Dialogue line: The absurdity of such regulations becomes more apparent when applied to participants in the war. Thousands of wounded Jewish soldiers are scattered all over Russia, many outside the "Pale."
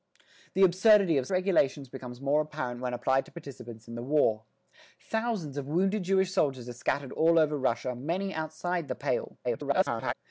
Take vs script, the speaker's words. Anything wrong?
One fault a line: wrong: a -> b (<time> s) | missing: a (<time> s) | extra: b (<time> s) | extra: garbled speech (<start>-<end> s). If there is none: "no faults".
missing: such (1.3 s)
extra: garbled speech (9.4-10.1 s)